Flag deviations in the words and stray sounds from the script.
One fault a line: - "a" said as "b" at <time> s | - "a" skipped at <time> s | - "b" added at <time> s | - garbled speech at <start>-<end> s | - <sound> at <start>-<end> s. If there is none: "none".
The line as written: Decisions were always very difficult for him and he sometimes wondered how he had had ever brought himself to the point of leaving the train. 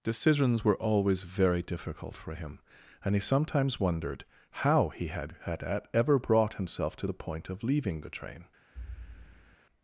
- thud at 8.7-9.6 s